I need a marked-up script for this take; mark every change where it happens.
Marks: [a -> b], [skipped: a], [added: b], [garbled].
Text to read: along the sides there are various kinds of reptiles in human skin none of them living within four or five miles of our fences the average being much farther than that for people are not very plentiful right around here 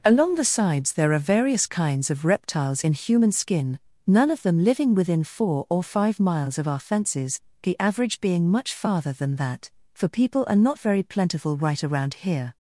along the sides there are various kinds of reptiles in human skin none of them living within four or five miles of our fences the average being much farther than that for people are not very plentiful right around here